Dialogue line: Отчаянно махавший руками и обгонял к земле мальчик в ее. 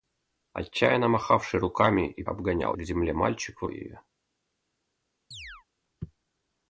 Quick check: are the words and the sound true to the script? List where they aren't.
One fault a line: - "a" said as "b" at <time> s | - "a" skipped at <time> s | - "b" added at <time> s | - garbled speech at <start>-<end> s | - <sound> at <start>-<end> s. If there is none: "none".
- chirp at 5.3-5.7 s